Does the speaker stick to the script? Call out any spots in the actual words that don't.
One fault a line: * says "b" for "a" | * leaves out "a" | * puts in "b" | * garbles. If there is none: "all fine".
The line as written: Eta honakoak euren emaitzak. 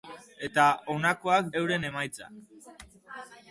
all fine